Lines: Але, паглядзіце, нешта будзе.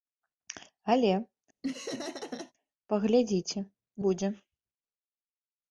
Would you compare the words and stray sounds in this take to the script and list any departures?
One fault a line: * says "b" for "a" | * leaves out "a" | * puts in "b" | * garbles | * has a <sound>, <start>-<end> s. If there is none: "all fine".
* has a laugh, 1.6-2.5 s
* leaves out "нешта"